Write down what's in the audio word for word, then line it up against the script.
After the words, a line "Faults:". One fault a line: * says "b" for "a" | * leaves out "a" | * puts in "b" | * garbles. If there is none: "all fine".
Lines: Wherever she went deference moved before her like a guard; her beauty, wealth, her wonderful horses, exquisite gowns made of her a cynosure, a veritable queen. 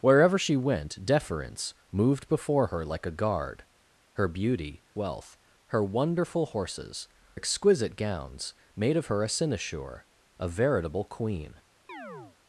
Wherever she went deference moved before her like a guard; her beauty, wealth, her wonderful horses, exquisite gowns made of her a cynosure, a veritable queen.
Faults:
all fine